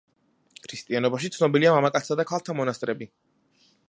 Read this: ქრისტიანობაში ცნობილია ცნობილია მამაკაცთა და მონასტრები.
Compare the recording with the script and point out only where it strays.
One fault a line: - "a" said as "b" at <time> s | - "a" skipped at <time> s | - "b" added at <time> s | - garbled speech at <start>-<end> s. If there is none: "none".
- "ცნობილია" skipped at 1.7 s
- "ქალთა" added at 2.3 s